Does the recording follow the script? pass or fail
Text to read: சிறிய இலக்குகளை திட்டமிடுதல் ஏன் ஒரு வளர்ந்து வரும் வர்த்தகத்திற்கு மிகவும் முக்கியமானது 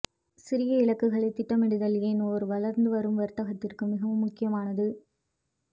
pass